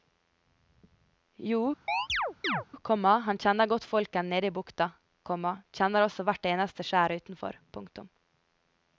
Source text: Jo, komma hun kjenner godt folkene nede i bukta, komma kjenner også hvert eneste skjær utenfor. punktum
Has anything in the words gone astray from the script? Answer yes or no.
yes